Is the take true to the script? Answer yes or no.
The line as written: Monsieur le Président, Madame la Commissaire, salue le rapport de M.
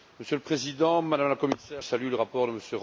yes